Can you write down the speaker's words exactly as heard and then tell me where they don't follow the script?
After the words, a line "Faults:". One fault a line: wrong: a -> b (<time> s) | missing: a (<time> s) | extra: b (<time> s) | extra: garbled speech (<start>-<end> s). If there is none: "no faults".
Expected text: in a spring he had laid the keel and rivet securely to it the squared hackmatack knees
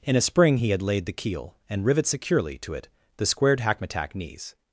in a spring he had laid the keel and rivet securely to it the squared hackmatack knees
Faults:
no faults